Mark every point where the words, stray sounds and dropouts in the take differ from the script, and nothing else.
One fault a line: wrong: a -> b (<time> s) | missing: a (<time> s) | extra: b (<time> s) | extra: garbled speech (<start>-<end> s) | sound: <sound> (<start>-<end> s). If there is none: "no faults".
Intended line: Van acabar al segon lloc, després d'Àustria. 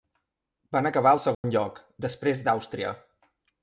sound: dropout (1.3-1.4 s)